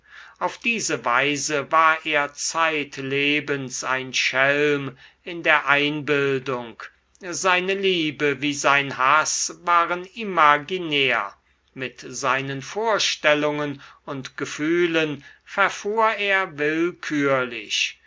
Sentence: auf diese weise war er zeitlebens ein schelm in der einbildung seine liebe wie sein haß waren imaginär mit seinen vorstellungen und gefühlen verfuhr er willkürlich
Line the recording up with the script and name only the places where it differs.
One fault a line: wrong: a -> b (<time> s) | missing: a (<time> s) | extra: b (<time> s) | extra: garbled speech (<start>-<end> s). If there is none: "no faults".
no faults